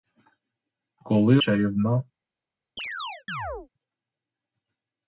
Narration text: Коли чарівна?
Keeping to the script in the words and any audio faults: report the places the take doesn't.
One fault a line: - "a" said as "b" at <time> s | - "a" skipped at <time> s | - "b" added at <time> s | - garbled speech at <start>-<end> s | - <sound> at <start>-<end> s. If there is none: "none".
- chirp at 2.8-3.7 s